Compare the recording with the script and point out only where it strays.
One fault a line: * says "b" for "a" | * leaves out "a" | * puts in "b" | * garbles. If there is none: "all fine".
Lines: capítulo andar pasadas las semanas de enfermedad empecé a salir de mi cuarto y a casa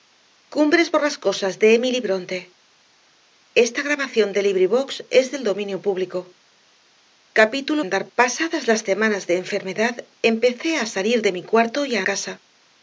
all fine